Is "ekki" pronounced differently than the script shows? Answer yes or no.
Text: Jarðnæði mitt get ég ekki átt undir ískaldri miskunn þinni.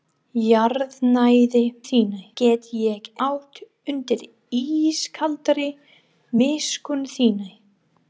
yes